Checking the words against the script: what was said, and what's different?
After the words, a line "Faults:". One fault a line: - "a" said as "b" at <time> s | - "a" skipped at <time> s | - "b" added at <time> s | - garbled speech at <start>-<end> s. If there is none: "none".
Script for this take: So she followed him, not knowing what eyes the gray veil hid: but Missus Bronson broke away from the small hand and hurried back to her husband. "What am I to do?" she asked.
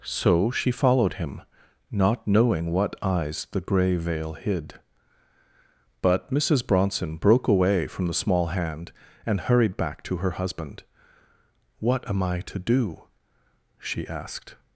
So she followed him, not knowing what eyes the gray veil hid: but Missus Bronson broke away from the small hand and hurried back to her husband. "What am I to do?" she asked.
Faults:
none